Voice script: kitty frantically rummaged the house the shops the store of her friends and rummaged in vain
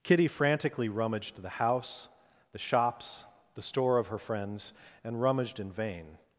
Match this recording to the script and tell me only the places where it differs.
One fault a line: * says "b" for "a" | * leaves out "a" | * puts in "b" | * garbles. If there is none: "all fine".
all fine